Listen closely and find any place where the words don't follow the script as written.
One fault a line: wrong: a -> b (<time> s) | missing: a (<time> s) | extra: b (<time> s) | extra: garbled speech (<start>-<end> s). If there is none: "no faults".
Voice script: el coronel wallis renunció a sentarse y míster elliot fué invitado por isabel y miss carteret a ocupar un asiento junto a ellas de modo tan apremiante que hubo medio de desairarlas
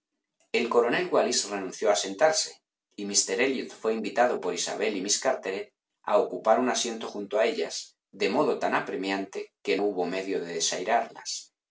no faults